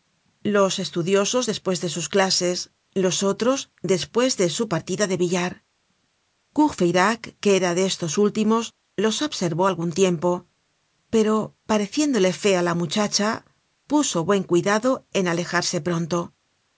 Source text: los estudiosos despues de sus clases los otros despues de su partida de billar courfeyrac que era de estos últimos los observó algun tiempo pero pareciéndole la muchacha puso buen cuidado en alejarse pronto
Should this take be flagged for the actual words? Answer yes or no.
yes